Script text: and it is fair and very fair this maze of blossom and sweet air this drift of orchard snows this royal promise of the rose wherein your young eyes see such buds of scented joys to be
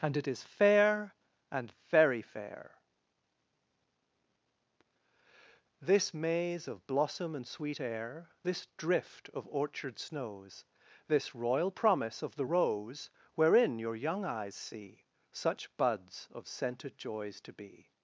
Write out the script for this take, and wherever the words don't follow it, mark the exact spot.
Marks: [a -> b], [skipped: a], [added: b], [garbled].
and it is fair and very fair this maze of blossom and sweet air this drift of orchard snows this royal promise of the rose wherein your young eyes see such buds of scented joys to be